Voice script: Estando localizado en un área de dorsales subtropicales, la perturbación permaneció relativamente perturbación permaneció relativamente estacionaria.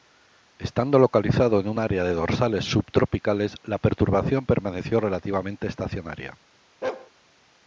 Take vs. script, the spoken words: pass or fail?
fail